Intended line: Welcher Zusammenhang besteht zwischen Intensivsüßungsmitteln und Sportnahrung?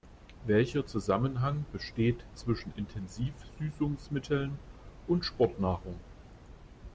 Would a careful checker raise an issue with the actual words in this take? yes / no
no